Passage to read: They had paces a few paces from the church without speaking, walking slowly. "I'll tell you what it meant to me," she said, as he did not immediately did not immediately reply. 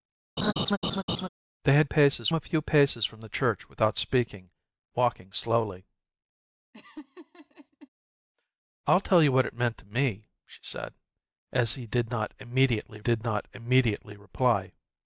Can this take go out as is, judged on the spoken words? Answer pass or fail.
pass